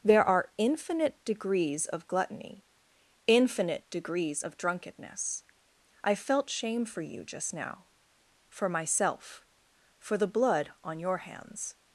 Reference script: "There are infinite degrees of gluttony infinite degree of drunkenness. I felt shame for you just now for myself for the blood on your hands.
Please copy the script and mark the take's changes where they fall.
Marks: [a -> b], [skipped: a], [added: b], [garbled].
"There are infinite degrees of gluttony infinite [degree -> degrees] of drunkenness. I felt shame for you just now for myself for the blood on your hands.